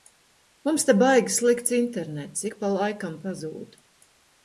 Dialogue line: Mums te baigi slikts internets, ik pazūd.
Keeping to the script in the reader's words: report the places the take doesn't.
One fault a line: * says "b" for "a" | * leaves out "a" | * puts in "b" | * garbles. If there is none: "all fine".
* puts in "pa laikam"